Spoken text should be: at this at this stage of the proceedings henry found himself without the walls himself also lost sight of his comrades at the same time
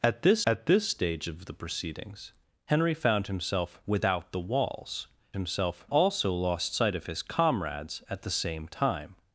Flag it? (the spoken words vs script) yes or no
no